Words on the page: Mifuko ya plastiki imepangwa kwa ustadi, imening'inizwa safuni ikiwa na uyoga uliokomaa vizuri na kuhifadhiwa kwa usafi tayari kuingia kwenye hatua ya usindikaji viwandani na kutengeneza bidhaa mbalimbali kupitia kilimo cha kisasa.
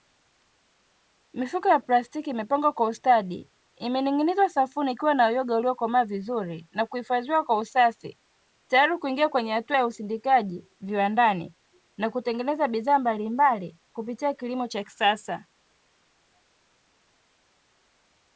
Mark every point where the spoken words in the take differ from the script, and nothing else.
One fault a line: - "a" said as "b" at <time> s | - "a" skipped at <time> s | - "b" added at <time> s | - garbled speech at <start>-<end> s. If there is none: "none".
none